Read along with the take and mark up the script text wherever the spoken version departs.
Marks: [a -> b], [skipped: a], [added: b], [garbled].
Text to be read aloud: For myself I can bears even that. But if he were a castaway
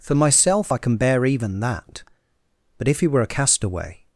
For myself I can [bears -> bear] even that. But if he were a castaway